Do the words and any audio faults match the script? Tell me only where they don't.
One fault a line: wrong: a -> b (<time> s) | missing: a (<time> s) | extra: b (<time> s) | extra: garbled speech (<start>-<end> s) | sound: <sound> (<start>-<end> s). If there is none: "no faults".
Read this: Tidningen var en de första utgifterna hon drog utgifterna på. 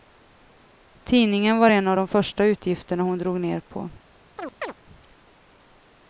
extra: av (1.9 s)
wrong: utgifterna -> ner (3.4 s)
sound: chirp (4.4-4.7 s)